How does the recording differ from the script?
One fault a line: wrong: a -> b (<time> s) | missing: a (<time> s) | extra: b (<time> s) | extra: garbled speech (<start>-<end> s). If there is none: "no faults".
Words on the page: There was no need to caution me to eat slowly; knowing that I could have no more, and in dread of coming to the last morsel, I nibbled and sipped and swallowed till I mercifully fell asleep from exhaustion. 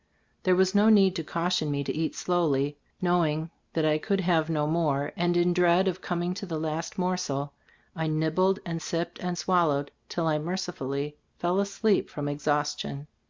no faults